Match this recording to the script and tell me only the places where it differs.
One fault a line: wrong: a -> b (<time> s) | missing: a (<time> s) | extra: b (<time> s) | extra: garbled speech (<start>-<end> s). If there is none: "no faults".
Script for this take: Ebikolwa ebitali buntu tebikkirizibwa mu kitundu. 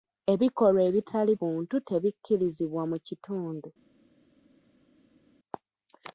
no faults